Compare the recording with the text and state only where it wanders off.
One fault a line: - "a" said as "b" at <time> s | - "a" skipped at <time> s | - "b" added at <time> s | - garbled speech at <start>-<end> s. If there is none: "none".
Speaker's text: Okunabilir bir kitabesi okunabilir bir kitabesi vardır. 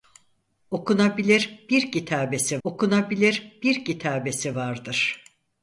none